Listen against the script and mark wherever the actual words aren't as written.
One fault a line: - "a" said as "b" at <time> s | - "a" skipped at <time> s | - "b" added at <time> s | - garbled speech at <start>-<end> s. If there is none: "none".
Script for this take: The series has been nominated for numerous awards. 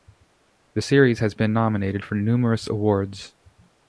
none